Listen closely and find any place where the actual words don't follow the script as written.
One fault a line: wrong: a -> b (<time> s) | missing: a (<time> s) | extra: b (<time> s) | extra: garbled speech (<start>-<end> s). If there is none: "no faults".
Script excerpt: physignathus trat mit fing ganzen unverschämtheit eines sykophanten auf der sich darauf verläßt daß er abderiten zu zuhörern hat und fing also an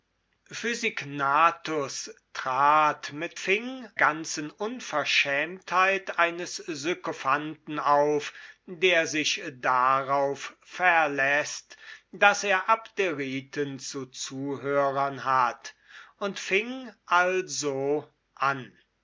no faults